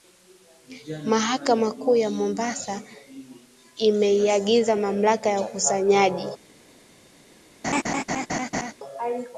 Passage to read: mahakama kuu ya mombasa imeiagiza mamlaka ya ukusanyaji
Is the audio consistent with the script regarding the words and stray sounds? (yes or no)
no